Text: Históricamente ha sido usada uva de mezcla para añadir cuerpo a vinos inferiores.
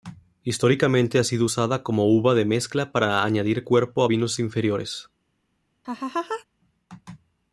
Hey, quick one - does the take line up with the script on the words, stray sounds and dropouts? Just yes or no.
no